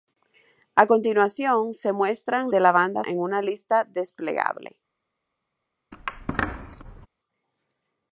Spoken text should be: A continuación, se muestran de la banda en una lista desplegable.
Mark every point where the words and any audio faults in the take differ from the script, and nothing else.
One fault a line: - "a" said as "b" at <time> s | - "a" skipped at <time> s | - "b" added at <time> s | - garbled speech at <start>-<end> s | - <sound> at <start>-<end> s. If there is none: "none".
- squeak at 5.9-7.1 s